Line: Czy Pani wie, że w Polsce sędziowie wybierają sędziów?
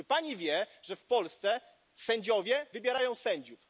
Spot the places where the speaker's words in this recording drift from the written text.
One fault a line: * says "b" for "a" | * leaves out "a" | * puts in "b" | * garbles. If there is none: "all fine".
all fine